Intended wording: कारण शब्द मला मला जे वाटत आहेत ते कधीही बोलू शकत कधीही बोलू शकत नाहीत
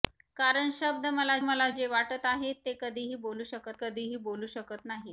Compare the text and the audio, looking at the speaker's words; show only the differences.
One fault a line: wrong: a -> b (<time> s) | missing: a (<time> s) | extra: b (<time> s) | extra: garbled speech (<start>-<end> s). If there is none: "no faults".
no faults